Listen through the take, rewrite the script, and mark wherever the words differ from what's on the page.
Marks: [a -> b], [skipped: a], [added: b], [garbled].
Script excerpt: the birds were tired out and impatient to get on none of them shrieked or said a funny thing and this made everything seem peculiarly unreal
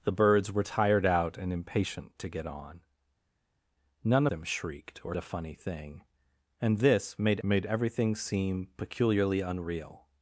the birds were tired out and impatient to get on none [skipped: of] them shrieked or [skipped: said] a funny thing and this made [added: made] everything seem peculiarly unreal